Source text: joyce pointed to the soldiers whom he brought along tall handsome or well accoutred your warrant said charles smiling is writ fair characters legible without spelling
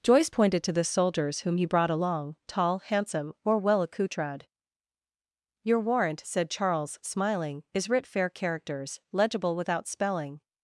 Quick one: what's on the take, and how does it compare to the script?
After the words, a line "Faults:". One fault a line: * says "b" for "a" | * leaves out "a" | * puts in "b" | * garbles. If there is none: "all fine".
joyce pointed to the soldiers whom he brought along tall handsome or well accoutred your warrant said charles smiling is writ fair characters legible without spelling
Faults:
all fine